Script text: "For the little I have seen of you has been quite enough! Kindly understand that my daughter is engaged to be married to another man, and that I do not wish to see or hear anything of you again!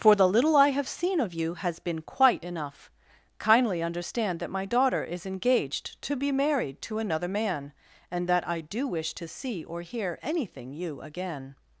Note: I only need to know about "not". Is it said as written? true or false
false